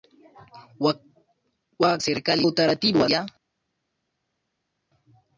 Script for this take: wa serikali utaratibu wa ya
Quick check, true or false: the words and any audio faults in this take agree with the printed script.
true